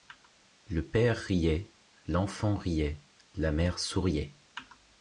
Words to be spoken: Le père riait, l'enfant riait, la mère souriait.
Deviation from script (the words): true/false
false